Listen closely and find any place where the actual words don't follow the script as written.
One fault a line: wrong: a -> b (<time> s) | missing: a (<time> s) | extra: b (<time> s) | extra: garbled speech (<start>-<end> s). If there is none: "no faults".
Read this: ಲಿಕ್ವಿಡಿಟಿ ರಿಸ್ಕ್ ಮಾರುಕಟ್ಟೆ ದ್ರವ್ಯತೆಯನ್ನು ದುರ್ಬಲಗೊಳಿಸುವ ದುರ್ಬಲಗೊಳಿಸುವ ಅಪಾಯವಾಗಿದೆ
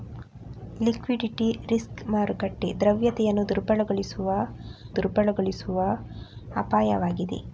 no faults